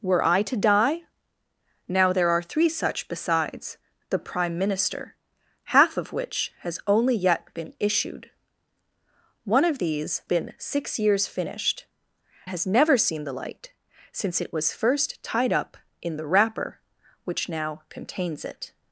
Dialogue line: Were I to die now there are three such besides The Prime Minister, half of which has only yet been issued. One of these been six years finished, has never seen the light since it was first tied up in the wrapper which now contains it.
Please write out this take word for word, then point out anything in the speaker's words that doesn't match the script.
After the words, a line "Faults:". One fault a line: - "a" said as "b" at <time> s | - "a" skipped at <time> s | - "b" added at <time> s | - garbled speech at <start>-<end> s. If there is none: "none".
Were I to die now there are three such besides The Prime Minister, half of which has only yet been issued. One of these been six years finished, has never seen the light since it was first tied up in the wrapper which now contains it.
Faults:
none